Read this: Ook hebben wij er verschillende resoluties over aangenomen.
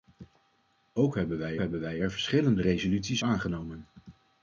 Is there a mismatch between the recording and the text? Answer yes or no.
yes